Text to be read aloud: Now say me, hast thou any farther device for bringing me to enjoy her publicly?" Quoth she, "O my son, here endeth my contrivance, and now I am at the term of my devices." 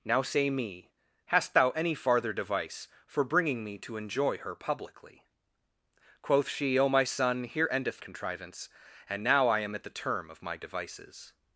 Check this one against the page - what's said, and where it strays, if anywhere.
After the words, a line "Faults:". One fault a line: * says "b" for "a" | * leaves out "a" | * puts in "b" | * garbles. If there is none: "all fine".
Now say me, hast thou any farther device for bringing me to enjoy her publicly?" Quoth she, "O my son, here endeth contrivance, and now I am at the term of my devices."
Faults:
* leaves out "my"